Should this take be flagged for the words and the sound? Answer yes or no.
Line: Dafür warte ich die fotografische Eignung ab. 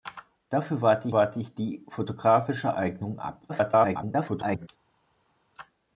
yes